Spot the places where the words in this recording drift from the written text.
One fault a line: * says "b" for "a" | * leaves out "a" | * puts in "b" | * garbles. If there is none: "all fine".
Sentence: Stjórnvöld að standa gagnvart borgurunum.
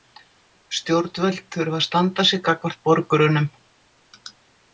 * puts in "þurfa"
* puts in "sig"